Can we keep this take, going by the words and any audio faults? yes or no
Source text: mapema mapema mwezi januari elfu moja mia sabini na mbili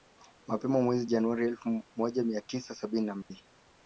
no